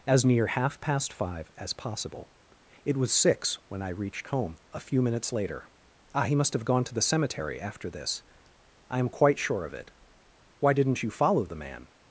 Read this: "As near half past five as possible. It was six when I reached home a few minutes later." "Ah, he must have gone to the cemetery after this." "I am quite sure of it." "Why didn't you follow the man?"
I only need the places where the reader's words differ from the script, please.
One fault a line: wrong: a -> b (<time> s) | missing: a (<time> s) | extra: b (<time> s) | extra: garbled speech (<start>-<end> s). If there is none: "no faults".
no faults